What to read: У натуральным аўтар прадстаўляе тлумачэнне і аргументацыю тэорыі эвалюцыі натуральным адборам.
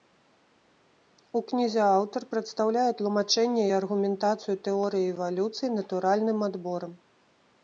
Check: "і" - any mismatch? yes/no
no